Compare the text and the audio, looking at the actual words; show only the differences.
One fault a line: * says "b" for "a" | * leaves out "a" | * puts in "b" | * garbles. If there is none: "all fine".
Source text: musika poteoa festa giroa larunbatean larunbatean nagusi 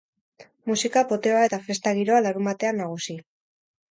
* puts in "eta"
* leaves out "larunbatean"